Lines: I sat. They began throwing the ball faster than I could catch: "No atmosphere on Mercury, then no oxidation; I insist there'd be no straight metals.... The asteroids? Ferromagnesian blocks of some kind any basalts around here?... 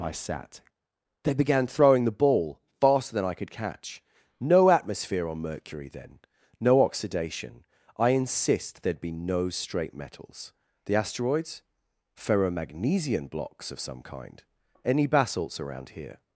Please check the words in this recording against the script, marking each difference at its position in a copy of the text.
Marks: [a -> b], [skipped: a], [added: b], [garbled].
I sat. They began throwing the ball faster than I could catch: "No atmosphere on Mercury, then no oxidation; I insist there'd be no straight metals.... The asteroids? Ferromagnesian blocks of some kind any basalts around here?...